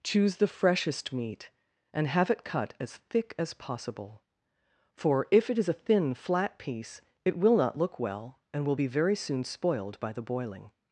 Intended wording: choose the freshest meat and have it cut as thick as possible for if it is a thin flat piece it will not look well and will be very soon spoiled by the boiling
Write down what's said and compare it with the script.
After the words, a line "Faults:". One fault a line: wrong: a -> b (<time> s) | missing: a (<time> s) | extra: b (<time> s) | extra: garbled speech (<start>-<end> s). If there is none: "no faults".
choose the freshest meat and have it cut as thick as possible for if it is a thin flat piece it will not look well and will be very soon spoiled by the boiling
Faults:
no faults